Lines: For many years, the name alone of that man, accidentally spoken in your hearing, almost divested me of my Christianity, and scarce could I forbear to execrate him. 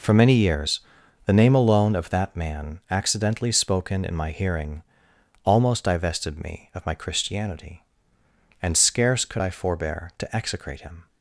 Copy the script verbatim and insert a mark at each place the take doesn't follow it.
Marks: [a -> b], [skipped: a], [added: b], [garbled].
For many years, the name alone of that man, accidentally spoken in [your -> my] hearing, almost divested me of my Christianity, and scarce could I forbear to execrate him.